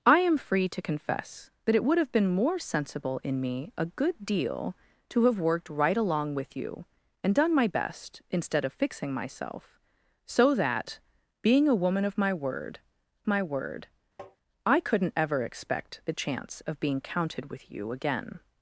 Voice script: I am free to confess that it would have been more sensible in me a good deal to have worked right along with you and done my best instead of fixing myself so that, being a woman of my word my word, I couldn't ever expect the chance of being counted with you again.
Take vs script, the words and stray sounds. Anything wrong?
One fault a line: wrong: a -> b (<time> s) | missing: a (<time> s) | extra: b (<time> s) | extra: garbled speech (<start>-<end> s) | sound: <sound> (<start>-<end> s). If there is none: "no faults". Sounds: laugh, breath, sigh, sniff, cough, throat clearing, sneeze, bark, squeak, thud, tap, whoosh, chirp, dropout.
sound: tap (14.2-14.4 s)